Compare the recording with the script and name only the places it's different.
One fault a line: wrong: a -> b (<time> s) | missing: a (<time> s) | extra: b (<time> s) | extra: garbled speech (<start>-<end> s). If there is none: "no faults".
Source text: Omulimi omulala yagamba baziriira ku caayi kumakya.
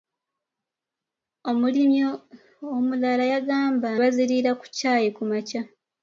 no faults